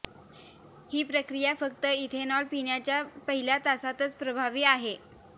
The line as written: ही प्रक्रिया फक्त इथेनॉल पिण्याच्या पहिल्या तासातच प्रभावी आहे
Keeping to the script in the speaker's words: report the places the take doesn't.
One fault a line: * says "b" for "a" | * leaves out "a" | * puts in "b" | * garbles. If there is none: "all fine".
all fine